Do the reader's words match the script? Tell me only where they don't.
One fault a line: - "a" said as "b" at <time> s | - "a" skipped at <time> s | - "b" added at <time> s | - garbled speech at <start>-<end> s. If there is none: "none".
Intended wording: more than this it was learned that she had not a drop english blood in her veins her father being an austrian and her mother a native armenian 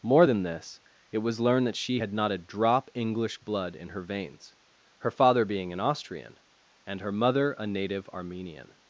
none